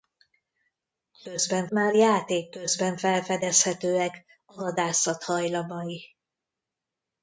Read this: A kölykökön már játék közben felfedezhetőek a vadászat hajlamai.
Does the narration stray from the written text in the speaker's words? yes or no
yes